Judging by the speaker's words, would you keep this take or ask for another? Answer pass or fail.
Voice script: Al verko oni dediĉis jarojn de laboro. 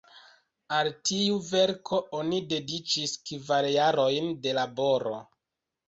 fail